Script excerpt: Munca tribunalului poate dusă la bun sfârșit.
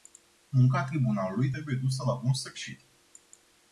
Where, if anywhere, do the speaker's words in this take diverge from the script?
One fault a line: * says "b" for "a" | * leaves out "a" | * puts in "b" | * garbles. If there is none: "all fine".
* says "trebuie" for "poate"